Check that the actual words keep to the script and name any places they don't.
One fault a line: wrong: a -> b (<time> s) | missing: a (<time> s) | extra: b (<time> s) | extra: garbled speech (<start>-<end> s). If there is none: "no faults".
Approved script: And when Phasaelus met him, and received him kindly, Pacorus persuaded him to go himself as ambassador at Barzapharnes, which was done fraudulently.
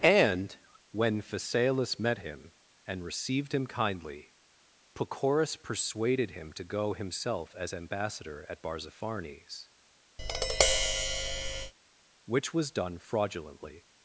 no faults